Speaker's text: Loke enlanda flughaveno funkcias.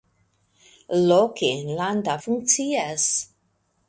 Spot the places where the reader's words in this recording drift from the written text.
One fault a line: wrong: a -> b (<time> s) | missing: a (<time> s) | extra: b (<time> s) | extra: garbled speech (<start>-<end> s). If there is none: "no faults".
missing: flughaveno (2.1 s)